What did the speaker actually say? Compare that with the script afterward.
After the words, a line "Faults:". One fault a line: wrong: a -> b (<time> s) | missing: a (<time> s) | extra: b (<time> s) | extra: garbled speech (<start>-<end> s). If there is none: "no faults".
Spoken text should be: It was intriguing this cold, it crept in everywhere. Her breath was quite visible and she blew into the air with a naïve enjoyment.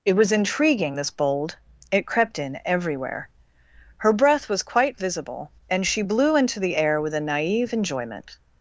It was intriguing this bold, it crept in everywhere. Her breath was quite visible and she blew into the air with a naïve enjoyment.
Faults:
wrong: cold -> bold (1.1 s)